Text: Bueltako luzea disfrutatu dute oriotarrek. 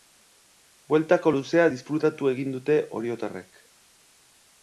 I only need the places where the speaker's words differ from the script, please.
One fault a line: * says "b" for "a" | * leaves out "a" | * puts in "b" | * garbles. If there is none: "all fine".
* puts in "egin"